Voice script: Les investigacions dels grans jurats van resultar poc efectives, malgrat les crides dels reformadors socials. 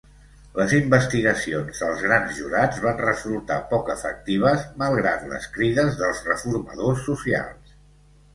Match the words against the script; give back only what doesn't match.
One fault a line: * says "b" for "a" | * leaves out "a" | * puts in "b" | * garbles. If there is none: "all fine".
all fine